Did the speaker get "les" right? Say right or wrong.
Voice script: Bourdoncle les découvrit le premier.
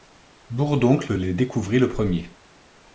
right